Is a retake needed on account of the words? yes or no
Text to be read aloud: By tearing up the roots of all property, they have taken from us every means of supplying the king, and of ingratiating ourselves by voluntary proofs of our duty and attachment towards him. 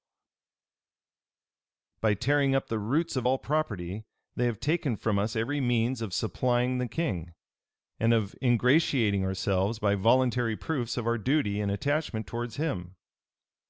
no